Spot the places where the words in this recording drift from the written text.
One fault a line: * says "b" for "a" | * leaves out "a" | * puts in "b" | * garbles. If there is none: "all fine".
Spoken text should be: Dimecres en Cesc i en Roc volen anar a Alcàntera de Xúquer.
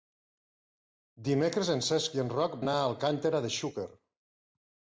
* leaves out "volen"